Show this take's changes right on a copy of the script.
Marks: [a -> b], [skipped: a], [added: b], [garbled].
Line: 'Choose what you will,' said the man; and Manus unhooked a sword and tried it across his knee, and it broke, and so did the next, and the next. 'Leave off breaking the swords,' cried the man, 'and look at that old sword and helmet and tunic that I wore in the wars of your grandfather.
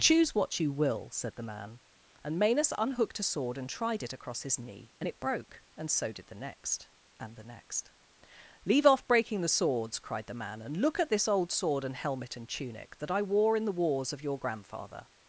'Choose what you will,' said the man; and Manus unhooked a sword and tried it across his knee, and it broke, and so did the next, and the next. 'Leave off breaking the swords,' cried the man, 'and look at [that -> this] old sword and helmet and tunic that I wore in the wars of your grandfather.